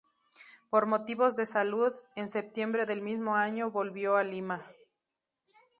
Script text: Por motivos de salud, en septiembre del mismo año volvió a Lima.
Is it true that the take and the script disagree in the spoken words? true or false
false